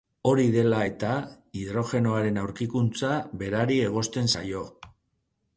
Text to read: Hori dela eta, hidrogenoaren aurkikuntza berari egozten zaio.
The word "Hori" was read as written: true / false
true